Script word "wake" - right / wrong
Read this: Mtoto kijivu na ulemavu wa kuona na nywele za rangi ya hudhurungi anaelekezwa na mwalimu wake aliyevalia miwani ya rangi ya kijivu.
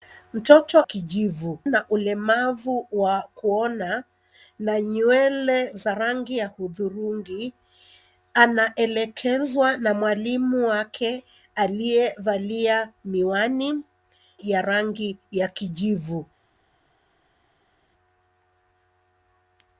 right